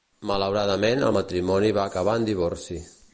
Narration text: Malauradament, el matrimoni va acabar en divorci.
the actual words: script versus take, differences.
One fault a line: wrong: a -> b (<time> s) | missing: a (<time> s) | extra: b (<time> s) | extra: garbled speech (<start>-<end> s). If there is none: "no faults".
no faults